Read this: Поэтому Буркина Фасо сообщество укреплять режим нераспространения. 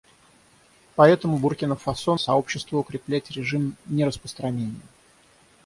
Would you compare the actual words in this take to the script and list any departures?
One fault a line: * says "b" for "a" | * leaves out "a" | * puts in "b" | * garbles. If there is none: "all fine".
all fine